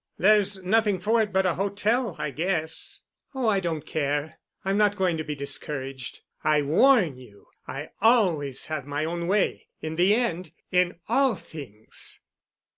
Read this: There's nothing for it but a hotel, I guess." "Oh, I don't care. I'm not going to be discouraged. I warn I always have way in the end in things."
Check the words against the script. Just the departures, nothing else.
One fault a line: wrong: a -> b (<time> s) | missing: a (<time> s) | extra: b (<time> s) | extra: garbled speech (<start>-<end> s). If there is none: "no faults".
extra: you (7.2 s)
extra: my own (8.9 s)
extra: all (11.1 s)